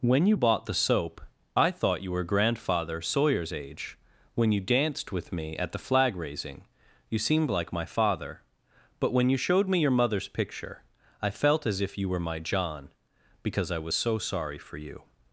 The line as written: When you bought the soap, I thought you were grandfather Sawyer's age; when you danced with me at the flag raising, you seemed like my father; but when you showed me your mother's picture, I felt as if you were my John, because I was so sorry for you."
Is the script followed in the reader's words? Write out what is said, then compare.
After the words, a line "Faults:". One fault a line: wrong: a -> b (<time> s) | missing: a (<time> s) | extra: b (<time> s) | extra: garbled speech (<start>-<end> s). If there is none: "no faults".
When you bought the soap, I thought you were grandfather Sawyer's age; when you danced with me at the flag raising, you seemed like my father; but when you showed me your mother's picture, I felt as if you were my John, because I was so sorry for you."
Faults:
no faults